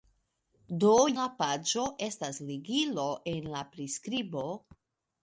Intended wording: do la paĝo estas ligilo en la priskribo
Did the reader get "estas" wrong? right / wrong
right